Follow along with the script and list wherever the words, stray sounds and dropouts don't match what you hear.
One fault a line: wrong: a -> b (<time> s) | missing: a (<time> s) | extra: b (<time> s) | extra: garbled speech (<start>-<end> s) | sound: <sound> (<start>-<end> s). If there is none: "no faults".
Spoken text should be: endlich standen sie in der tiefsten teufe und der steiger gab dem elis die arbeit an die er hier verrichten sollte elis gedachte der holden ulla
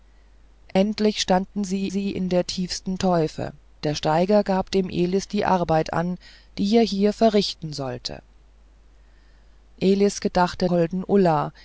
sound: dropout (0.7-0.8 s)
extra: sie (1.9 s)
missing: und (3.5 s)
missing: der (10.7 s)